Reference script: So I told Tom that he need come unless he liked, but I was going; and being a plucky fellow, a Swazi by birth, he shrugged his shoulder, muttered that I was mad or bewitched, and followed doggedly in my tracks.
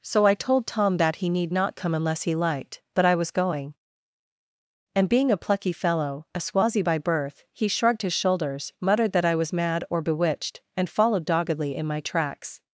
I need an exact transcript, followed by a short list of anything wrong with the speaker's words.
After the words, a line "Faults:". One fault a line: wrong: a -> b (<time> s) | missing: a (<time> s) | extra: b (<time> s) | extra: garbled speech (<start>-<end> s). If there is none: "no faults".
So I told Tom that he need not come unless he liked, but I was going; and being a plucky fellow, a Swazi by birth, he shrugged his shoulders, muttered that I was mad or bewitched, and followed doggedly in my tracks.
Faults:
extra: not (1.5 s)
wrong: shoulder -> shoulders (8.1 s)